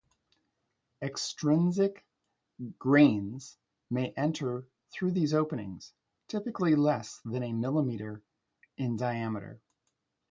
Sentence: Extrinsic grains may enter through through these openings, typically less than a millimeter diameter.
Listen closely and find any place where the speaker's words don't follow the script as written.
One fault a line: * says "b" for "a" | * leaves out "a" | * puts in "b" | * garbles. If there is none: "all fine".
* leaves out "through"
* puts in "in"